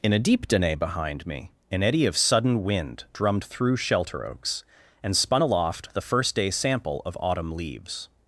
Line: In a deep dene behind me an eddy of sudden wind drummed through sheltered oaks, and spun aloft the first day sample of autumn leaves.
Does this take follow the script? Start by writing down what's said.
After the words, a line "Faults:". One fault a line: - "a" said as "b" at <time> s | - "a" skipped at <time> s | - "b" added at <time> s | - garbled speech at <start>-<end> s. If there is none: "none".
In a deep dene behind me an eddy of sudden wind drummed through shelter oaks, and spun aloft the first day sample of autumn leaves.
Faults:
- "sheltered" said as "shelter" at 3.8 s